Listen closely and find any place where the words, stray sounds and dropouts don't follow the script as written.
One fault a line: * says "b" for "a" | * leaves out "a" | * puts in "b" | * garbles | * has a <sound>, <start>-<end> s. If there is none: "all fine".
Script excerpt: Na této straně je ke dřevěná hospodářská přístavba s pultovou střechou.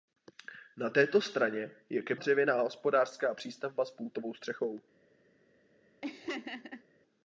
* has a laugh, 6.0-6.8 s